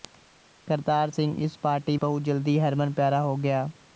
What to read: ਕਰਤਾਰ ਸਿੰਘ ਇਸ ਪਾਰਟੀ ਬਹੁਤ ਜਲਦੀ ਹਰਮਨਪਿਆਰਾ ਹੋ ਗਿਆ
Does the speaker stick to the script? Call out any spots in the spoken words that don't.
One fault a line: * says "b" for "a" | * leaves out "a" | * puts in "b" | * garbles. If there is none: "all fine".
all fine